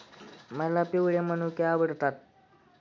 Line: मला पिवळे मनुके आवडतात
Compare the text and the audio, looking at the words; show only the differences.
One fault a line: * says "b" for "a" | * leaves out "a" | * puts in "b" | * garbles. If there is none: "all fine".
all fine